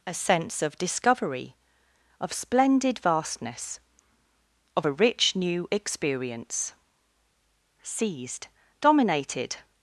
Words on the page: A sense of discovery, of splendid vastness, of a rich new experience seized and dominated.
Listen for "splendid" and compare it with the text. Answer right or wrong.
right